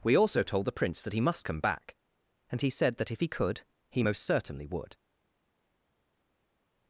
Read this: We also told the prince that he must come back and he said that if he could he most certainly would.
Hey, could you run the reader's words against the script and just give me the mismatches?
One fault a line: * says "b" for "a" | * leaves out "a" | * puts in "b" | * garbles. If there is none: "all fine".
all fine